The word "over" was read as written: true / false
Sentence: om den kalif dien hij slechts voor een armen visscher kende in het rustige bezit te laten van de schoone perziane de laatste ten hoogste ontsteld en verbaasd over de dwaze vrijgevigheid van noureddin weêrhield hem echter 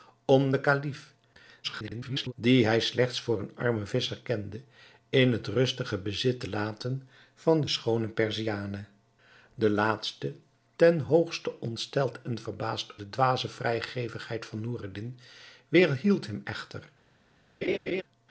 false